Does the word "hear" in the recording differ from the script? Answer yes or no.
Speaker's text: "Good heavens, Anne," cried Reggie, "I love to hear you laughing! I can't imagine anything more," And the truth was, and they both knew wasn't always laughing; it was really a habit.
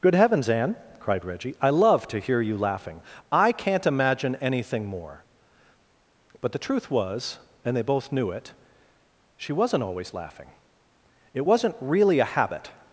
no